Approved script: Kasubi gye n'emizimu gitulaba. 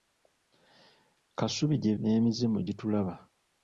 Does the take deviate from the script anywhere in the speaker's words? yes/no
no